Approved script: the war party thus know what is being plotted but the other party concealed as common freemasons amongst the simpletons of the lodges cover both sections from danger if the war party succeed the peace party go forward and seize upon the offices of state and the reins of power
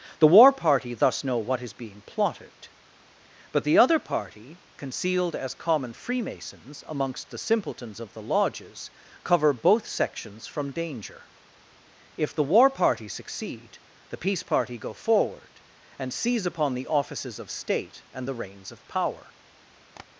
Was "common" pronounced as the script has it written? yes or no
yes